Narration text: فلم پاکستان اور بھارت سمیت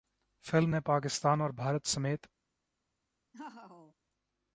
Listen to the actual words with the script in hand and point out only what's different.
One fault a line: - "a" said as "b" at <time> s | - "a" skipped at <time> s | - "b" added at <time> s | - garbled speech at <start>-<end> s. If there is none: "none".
- "نے" added at 0.7 s